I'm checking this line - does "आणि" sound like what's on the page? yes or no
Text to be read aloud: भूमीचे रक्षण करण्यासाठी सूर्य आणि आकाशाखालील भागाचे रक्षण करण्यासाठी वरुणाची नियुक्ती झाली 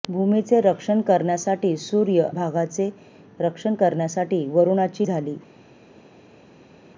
no